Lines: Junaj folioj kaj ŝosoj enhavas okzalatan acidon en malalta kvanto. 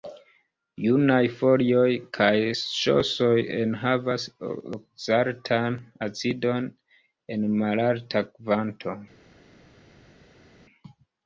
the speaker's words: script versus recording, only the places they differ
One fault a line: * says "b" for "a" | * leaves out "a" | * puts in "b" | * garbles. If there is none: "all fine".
all fine